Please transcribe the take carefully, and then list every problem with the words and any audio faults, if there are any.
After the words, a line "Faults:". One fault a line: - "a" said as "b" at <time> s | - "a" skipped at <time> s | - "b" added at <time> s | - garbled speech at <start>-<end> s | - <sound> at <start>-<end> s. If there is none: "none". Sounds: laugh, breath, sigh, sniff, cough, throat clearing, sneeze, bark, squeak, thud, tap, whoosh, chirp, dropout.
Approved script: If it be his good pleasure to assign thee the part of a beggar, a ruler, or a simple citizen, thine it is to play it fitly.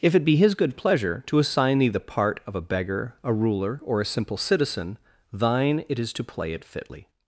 If it be his good pleasure to assign thee the part of a beggar, a ruler, or a simple citizen, thine it is to play it fitly.
Faults:
none